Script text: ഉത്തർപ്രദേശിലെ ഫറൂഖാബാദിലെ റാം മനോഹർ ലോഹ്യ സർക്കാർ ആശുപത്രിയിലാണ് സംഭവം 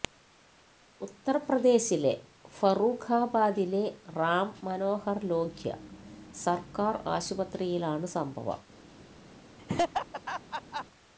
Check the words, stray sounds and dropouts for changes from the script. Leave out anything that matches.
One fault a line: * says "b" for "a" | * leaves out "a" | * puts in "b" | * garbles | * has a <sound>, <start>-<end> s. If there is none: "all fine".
* has a laugh, 9.6-10.9 s